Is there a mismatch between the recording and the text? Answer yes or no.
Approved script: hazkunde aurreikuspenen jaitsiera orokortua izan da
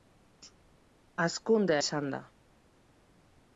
yes